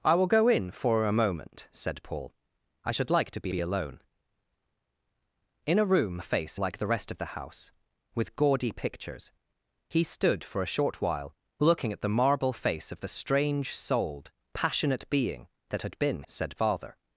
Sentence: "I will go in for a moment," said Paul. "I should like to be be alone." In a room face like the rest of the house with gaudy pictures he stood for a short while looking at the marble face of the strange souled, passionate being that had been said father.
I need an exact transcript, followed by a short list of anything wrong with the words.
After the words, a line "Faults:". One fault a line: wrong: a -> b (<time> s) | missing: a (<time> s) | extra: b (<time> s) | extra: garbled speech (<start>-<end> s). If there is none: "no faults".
"I will go in for a moment," said Paul. "I should like to be be alone." In a room face like the rest of the house with gaudy pictures he stood for a short while looking at the marble face of the strange souled, passionate being that had been said father.
Faults:
no faults